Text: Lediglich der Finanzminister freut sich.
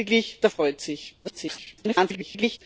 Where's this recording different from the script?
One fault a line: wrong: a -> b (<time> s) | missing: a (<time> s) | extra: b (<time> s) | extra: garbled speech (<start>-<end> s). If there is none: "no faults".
missing: Finanzminister (0.5 s)
extra: garbled speech (1.2-2.6 s)